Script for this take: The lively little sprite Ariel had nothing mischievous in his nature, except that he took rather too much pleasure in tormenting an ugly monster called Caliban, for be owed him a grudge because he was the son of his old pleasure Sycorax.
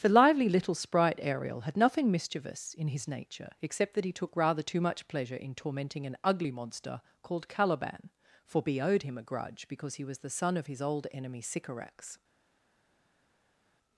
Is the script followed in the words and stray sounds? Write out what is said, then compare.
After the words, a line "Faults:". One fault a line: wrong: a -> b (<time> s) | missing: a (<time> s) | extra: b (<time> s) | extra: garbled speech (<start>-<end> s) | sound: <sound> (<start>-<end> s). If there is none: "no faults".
The lively little sprite Ariel had nothing mischievous in his nature, except that he took rather too much pleasure in tormenting an ugly monster called Caliban, for be owed him a grudge because he was the son of his old enemy Sycorax.
Faults:
wrong: pleasure -> enemy (11.1 s)